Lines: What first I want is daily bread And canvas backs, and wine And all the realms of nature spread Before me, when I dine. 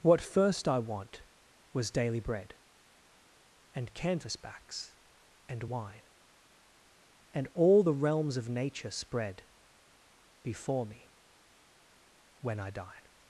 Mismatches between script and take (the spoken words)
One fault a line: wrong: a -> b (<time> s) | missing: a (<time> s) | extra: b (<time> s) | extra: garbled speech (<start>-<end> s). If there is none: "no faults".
wrong: is -> was (1.7 s)